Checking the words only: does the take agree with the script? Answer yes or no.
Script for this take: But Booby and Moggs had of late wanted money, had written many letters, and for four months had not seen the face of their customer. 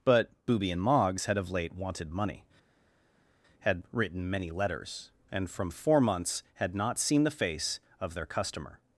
no